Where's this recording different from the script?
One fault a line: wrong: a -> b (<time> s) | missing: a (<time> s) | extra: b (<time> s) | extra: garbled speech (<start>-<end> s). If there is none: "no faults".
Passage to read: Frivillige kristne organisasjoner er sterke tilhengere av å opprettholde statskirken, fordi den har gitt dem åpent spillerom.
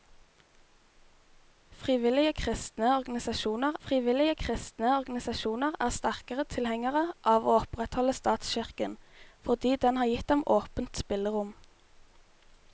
extra: frivillige kristne organisasjoner (3.8 s)